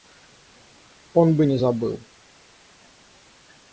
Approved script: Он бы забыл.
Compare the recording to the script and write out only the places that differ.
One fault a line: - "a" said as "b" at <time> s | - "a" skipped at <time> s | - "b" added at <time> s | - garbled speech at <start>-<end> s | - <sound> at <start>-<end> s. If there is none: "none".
- "не" added at 1.4 s